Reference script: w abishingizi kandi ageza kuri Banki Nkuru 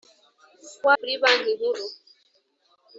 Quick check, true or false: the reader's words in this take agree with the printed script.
false